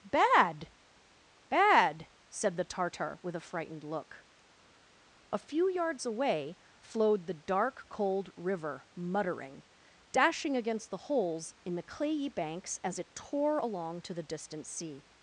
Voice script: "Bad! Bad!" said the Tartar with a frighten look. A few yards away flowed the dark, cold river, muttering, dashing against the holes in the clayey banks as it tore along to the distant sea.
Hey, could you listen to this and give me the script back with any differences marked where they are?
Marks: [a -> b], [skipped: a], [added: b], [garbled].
"Bad! Bad!" said the Tartar with a [frighten -> frightened] look. A few yards away flowed the dark, cold river, muttering, dashing against the holes in the clayey banks as it tore along to the distant sea.